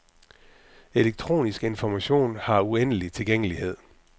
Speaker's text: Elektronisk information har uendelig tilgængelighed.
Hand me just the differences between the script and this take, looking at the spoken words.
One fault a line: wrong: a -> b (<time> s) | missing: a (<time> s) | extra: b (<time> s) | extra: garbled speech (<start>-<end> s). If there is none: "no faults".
no faults